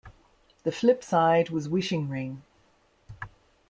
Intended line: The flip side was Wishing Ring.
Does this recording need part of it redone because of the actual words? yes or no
no